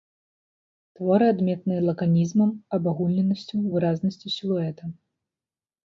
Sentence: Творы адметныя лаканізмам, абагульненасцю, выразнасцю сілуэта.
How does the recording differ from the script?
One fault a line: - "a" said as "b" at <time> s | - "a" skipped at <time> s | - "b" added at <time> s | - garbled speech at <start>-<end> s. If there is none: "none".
none